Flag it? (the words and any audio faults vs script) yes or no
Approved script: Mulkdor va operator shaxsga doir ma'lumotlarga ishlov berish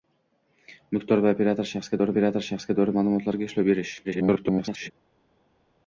yes